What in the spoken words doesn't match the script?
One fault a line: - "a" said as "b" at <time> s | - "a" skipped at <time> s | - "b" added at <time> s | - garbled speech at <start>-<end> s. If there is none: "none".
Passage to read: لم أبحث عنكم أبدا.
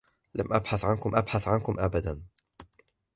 - "أبحث عنكم" added at 1.2 s